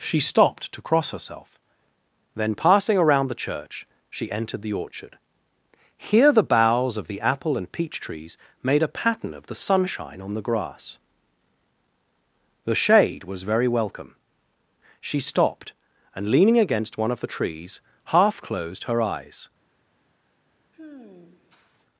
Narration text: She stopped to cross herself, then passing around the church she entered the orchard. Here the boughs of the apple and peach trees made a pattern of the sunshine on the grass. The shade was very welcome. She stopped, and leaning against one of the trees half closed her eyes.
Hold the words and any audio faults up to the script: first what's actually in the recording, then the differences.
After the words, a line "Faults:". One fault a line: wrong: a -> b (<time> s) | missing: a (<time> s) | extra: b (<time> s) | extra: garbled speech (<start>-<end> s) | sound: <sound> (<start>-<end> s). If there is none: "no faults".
She stopped to cross herself, then passing around the church she entered the orchard. Here the boughs of the apple and peach trees made a pattern of the sunshine on the grass. The shade was very welcome. She stopped, and leaning against one of the trees half closed her eyes.
Faults:
sound: sigh (20.7-21.9 s)